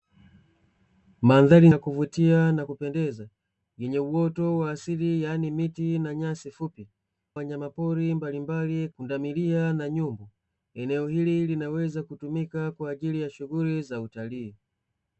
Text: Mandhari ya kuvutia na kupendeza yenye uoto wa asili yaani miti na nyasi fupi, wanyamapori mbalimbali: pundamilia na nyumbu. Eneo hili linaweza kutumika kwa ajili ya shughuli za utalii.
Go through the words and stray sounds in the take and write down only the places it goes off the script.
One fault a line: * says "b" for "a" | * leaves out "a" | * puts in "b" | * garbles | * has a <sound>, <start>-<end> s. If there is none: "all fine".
all fine